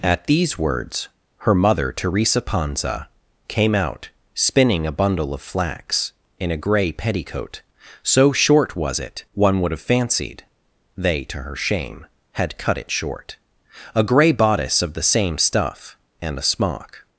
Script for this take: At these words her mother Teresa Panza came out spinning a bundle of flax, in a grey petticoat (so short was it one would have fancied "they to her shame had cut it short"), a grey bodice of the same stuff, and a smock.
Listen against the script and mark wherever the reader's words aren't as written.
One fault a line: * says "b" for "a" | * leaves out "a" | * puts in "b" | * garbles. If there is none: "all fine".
all fine